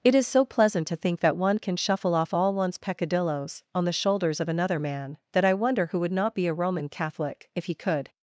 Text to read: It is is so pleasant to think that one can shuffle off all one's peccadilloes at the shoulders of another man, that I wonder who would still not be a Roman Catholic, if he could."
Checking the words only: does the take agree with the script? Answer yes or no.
no